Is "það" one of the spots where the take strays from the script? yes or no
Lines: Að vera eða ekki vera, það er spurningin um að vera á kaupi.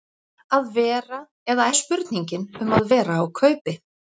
yes